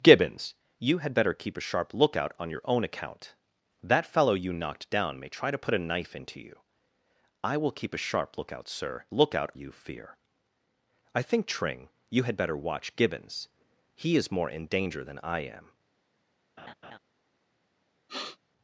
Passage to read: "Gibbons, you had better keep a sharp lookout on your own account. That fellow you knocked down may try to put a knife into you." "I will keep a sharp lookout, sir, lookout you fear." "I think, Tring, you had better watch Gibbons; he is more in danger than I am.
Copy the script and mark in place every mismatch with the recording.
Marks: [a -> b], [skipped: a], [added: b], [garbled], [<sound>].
"Gibbons, you had better keep a sharp lookout on your own account. That fellow you knocked down may try to put a knife into you." "I will keep a sharp lookout, sir, lookout you fear." "I think, Tring, you had better watch Gibbons; he is more in danger than I am. [laugh] [sniff]